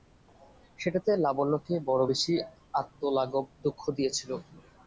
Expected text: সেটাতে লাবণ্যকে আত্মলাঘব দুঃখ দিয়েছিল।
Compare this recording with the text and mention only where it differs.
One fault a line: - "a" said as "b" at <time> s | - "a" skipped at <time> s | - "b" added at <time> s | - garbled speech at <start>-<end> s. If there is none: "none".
- "বড়ো বেশি" added at 1.9 s